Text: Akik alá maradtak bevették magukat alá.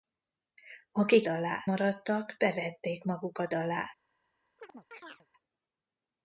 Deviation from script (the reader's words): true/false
false